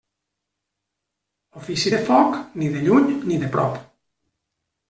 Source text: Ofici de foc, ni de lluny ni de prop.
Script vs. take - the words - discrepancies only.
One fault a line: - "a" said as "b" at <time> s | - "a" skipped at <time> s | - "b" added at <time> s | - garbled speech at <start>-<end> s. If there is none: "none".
none